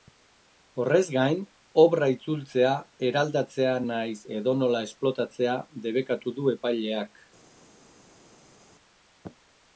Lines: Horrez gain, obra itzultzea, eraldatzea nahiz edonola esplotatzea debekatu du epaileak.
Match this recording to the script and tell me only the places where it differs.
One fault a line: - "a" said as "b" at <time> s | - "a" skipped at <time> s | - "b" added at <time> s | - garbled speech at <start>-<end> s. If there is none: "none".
none